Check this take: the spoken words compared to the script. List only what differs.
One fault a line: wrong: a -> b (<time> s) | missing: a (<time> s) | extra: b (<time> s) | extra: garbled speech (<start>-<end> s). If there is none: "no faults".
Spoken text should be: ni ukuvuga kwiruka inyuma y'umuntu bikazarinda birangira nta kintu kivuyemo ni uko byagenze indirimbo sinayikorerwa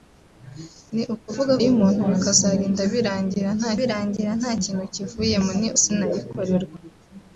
missing: kwiruka inyuma (1.5 s)
extra: birangira nta (3.8 s)
missing: uko byagenze indirimbo (5.7 s)